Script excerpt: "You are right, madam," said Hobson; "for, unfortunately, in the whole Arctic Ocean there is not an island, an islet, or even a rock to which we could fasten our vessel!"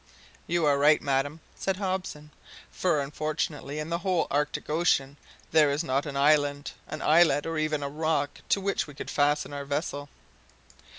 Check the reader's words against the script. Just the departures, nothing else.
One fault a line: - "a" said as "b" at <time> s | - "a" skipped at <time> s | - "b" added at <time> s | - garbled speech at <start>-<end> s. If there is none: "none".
none